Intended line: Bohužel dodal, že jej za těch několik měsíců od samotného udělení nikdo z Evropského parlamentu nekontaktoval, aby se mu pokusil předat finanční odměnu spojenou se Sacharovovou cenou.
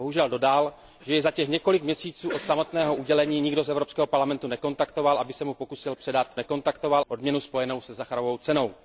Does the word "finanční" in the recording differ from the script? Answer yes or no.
yes